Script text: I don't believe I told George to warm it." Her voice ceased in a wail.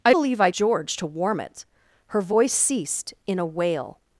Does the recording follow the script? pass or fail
fail